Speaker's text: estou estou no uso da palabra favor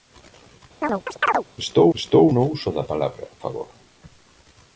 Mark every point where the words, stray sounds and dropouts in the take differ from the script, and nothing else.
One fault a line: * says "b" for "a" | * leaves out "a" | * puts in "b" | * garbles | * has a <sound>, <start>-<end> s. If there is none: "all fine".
* has a chirp, 0.8-1.4 s